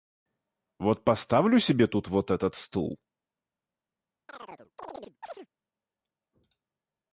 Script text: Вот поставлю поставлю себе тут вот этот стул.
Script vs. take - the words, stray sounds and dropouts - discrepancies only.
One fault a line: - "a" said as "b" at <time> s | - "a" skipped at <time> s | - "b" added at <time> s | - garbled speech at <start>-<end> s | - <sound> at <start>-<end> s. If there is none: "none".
- "поставлю" skipped at 1.6 s
- chirp at 4.3-5.5 s